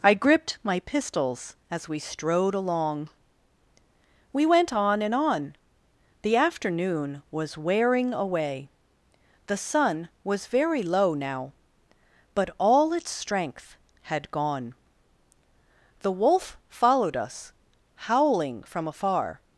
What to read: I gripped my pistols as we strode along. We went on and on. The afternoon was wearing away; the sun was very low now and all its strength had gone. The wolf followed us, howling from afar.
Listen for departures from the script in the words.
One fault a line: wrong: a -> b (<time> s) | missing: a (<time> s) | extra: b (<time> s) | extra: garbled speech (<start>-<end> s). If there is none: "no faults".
wrong: and -> but (12.3 s)